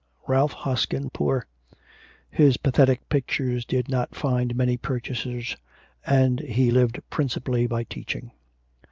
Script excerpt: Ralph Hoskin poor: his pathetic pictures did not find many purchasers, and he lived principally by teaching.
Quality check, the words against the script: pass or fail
pass